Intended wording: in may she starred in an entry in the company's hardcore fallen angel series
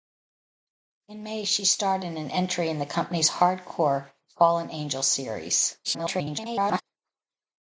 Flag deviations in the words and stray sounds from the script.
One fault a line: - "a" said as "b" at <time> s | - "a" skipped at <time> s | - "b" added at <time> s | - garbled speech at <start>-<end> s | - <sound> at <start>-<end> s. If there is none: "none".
- garbled speech at 5.8-6.8 s